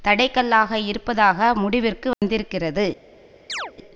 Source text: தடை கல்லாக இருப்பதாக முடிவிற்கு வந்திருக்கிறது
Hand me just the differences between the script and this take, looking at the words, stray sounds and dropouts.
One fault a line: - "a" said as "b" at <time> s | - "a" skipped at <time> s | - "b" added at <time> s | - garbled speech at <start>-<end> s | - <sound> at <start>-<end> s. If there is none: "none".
- dropout at 2.1-2.2 s
- chirp at 3.5-3.7 s